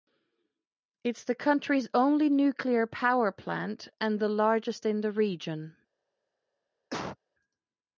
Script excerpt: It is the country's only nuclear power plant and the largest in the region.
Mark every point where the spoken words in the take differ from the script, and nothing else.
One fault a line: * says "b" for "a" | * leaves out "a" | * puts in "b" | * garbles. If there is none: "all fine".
all fine